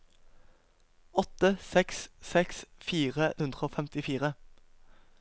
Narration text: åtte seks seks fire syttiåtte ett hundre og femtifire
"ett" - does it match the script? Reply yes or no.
no